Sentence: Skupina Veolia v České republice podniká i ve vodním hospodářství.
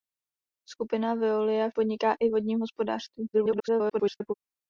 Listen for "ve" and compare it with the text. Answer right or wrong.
wrong